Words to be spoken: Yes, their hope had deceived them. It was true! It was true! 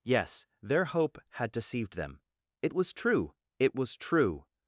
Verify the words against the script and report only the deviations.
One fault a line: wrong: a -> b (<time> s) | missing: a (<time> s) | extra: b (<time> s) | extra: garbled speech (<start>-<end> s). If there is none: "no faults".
no faults